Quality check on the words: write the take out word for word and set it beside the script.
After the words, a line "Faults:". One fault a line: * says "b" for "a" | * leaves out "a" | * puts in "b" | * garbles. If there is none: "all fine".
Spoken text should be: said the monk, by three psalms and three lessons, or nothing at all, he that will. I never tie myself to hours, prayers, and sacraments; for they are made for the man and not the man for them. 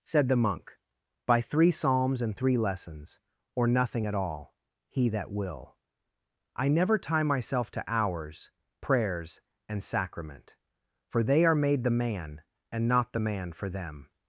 said the monk, by three psalms and three lessons, or nothing at all, he that will. I never tie myself to hours, prayers, and sacrament; for they are made the man and not the man for them.
Faults:
* says "sacrament" for "sacraments"
* leaves out "for"